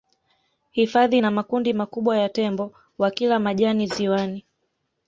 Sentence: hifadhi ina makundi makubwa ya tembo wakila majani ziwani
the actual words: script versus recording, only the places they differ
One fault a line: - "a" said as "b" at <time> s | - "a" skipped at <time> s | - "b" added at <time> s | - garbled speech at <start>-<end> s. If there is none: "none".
none